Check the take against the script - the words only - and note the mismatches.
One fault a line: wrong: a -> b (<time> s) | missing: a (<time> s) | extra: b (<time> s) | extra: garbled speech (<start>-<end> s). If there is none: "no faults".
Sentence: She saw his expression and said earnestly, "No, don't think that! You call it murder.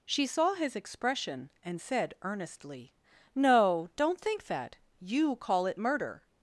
no faults